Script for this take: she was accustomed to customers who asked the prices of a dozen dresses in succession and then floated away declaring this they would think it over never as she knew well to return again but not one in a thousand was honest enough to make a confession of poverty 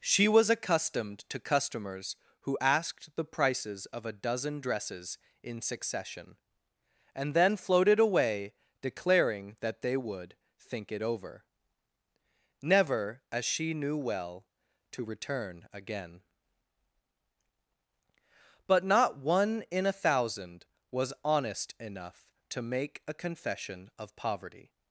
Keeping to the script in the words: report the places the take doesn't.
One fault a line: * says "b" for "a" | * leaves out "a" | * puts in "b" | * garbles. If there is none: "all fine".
* says "that" for "this"